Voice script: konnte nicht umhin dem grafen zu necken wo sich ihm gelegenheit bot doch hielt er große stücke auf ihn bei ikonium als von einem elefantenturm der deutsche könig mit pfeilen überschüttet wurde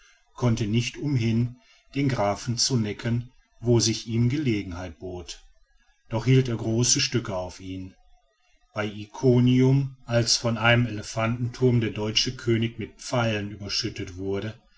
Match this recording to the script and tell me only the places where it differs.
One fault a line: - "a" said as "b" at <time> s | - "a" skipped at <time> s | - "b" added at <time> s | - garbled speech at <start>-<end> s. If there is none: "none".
- "dem" said as "den" at 1.9 s